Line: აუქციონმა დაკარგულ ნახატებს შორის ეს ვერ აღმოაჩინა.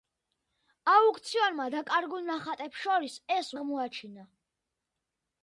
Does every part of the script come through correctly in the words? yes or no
no